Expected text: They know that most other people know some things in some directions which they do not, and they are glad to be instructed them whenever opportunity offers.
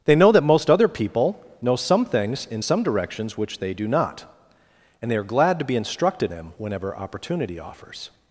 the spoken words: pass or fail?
pass